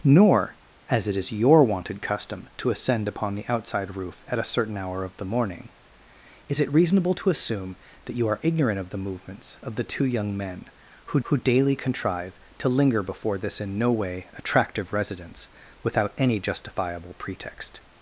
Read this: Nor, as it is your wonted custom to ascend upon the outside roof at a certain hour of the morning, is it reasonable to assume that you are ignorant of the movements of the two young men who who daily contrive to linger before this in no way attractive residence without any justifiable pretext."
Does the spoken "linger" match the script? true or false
true